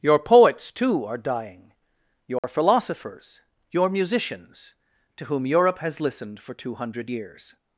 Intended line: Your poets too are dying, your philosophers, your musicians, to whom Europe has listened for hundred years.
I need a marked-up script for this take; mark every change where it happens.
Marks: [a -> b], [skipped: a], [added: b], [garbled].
Your poets too are dying, your philosophers, your musicians, to whom Europe has listened for [added: two] hundred years.